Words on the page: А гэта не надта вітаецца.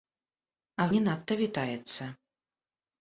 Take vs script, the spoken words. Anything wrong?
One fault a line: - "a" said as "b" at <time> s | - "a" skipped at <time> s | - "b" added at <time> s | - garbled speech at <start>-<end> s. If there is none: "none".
- "гэта" skipped at 0.9 s